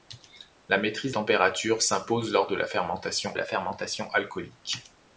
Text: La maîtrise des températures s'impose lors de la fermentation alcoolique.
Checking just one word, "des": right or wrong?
wrong